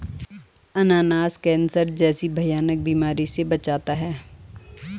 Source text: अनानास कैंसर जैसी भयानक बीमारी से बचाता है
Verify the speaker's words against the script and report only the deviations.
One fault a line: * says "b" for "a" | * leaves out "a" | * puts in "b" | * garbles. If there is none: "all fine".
all fine